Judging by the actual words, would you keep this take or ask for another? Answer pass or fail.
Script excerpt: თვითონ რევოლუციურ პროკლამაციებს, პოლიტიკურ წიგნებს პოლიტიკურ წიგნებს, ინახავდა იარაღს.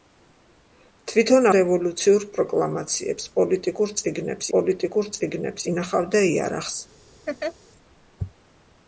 pass